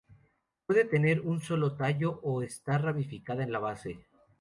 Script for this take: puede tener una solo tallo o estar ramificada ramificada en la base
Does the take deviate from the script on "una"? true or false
true